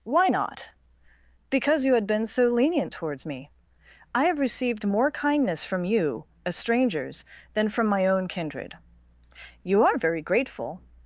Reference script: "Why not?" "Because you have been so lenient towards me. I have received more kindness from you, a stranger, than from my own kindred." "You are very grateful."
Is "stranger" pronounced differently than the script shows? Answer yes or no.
yes